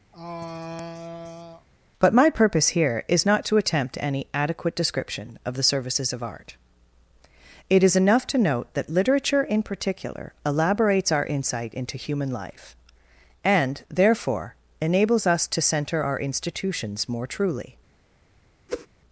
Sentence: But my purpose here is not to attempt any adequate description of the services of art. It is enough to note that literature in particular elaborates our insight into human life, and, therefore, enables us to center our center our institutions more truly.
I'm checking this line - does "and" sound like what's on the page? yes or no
yes